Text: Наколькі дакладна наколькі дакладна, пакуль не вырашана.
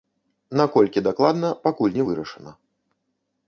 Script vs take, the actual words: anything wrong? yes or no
yes